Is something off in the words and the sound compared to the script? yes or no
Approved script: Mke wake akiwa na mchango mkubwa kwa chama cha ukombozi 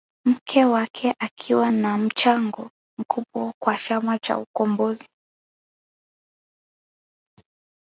no